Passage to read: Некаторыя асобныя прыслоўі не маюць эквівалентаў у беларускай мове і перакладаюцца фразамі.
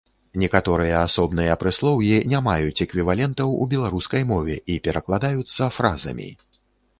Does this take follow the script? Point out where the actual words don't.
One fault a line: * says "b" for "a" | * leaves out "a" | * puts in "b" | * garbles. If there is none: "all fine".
all fine